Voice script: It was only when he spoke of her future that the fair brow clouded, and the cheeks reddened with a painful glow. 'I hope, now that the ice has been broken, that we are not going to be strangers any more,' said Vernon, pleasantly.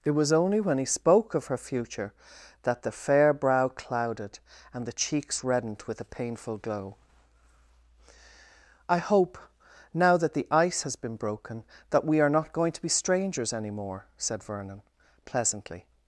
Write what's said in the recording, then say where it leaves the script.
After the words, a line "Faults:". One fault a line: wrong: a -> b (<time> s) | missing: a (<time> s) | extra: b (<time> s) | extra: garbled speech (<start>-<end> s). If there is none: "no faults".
It was only when he spoke of her future that the fair brow clouded, and the cheeks reddened with a painful glow. 'I hope, now that the ice has been broken, that we are not going to be strangers any more,' said Vernon, pleasantly.
Faults:
no faults